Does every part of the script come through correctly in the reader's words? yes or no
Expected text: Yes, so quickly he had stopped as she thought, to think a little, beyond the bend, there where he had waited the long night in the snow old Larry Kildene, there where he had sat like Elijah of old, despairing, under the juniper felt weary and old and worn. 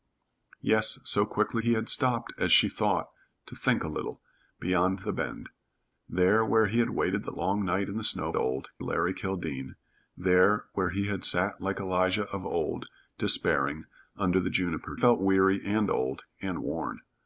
yes